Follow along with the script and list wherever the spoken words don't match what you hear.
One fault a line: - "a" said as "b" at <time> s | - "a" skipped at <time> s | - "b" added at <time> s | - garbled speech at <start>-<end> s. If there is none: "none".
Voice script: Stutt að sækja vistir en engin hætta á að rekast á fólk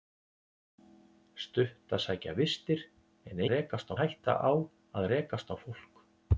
- "engin" said as "rekast" at 3.5 s